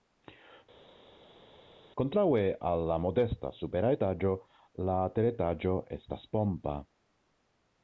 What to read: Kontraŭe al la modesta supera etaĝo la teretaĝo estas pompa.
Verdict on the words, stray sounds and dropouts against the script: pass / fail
pass